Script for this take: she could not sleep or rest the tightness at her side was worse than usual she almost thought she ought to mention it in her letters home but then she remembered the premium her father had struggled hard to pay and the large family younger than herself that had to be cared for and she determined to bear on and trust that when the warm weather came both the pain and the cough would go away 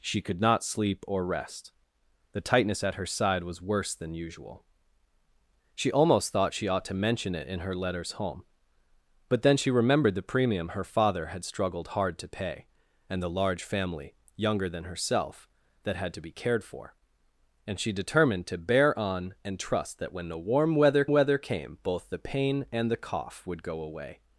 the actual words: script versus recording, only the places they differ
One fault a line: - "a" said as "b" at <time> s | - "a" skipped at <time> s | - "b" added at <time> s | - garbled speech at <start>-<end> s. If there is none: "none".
- "weather" added at 21.1 s